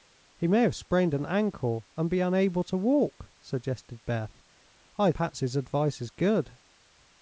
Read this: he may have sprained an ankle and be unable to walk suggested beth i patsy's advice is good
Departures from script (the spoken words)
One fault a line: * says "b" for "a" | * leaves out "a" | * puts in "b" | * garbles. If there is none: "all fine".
all fine